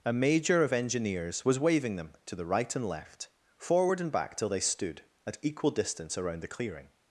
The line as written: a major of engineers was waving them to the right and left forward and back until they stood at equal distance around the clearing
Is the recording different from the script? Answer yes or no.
yes